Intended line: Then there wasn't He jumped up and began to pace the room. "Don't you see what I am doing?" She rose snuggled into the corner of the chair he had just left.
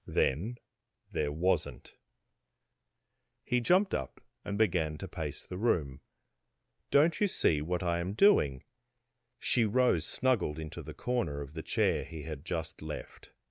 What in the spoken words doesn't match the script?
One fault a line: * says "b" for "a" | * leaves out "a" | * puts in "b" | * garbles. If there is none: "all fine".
all fine